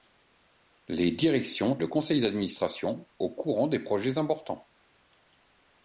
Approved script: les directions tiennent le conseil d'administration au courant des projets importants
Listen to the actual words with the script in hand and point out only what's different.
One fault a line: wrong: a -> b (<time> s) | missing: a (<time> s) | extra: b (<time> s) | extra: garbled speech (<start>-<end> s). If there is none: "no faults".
missing: tiennent (1.8 s)